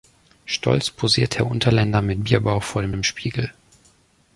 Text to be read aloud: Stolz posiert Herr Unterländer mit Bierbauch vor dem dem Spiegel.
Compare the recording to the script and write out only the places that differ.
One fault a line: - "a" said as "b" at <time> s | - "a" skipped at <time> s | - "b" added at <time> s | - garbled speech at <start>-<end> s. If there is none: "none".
none